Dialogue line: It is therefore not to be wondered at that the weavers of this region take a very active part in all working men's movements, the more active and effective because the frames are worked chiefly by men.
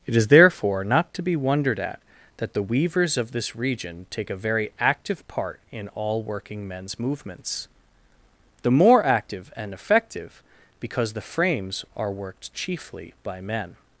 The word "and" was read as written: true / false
true